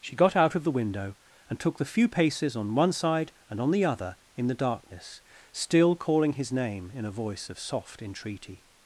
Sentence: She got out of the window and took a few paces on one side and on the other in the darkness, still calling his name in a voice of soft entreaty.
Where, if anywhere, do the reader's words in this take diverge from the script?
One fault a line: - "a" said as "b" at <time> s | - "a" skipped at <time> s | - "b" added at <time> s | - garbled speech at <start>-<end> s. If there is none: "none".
- "a" said as "the" at 1.8 s